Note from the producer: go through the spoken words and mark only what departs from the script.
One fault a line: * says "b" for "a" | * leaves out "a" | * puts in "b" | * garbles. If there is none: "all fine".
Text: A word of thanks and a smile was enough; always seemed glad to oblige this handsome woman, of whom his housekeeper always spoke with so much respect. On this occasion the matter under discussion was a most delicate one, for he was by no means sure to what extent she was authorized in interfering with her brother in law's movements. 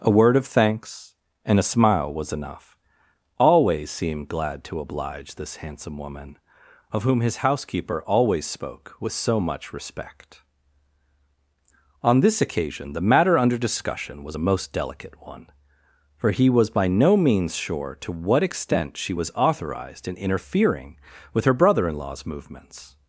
all fine